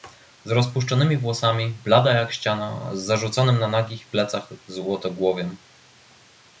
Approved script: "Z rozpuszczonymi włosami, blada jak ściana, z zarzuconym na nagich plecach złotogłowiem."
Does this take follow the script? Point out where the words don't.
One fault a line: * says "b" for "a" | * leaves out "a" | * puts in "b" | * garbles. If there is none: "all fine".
all fine